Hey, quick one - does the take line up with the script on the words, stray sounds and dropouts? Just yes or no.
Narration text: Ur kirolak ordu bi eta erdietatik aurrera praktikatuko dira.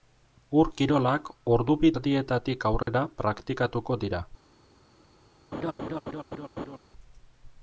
no